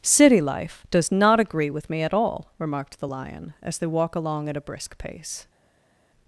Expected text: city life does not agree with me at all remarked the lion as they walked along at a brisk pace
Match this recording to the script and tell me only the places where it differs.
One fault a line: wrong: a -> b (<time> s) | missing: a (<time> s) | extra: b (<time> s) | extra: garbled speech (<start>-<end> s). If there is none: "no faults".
wrong: walked -> walk (3.9 s)